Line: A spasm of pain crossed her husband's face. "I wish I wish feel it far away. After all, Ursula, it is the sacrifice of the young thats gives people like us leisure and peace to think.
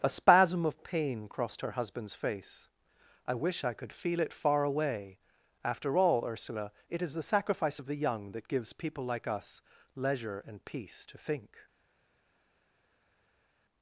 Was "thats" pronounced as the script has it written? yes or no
no